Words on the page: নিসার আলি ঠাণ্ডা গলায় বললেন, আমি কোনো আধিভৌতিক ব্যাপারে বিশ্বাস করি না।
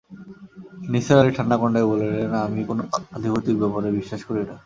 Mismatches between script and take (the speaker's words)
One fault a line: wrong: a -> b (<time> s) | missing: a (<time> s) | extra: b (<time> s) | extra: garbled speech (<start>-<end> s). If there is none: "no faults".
no faults